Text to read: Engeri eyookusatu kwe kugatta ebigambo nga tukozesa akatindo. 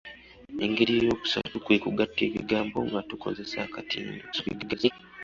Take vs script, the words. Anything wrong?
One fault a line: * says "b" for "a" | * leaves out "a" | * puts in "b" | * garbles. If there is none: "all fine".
* garbles